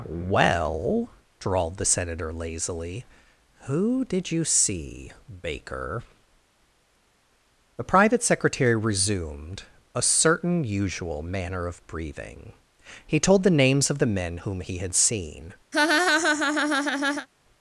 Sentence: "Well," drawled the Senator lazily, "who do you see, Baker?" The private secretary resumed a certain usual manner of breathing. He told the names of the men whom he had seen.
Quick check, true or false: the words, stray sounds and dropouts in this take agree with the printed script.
false